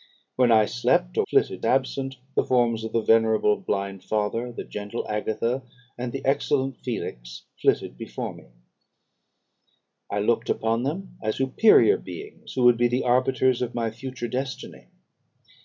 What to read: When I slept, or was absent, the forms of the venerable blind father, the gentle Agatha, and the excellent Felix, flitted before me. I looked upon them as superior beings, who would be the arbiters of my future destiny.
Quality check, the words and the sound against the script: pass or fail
fail